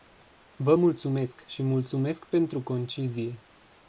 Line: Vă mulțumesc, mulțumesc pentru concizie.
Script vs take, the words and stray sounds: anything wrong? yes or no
yes